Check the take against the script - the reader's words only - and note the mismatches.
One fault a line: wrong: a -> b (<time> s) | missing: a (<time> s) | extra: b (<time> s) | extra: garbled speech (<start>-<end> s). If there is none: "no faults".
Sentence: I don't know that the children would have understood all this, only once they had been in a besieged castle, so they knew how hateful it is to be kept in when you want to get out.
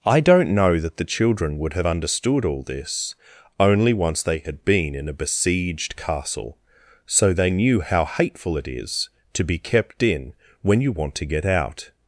no faults